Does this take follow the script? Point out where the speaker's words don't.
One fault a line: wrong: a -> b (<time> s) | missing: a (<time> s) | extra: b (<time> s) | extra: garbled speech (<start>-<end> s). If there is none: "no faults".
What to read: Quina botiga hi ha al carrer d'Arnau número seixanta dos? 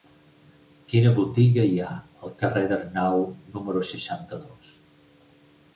no faults